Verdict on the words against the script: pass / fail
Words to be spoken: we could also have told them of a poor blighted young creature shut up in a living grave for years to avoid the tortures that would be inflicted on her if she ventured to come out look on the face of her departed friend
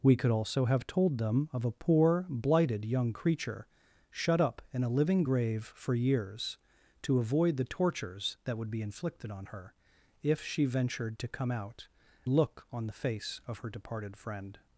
pass